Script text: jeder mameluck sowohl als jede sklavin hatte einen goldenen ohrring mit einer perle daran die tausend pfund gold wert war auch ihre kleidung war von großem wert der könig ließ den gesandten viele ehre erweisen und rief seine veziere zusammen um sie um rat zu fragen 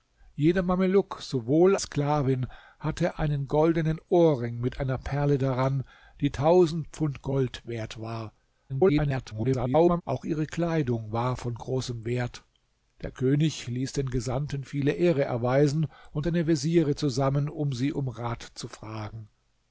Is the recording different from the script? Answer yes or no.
yes